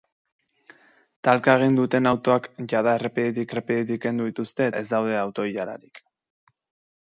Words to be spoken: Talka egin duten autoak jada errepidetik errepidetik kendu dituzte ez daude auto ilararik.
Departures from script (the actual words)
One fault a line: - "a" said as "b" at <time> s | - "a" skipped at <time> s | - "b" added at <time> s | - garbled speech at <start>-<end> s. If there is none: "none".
none